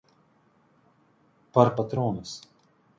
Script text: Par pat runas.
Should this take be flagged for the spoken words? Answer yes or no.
no